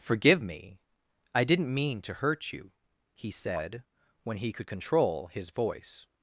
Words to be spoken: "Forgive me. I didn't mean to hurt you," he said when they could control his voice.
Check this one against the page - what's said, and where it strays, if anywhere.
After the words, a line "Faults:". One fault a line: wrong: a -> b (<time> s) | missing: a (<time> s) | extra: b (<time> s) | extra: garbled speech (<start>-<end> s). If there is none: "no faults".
"Forgive me. I didn't mean to hurt you," he said when he could control his voice.
Faults:
wrong: they -> he (4.4 s)